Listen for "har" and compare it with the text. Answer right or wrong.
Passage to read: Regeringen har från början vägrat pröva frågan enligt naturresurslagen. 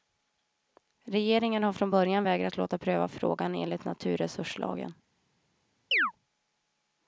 right